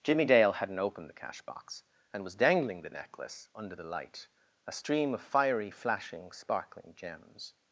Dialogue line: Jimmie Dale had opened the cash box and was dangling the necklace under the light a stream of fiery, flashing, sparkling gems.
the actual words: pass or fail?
fail